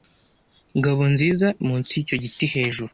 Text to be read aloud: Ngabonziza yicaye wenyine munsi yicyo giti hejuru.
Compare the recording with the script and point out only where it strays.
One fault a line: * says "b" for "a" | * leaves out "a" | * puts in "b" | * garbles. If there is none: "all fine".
* leaves out "yicaye wenyine"